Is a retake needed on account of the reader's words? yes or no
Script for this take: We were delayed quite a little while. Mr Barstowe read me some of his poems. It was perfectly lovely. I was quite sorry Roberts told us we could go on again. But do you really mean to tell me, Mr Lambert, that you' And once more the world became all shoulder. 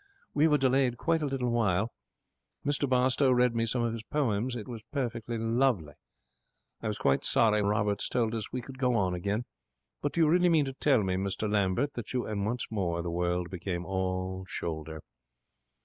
no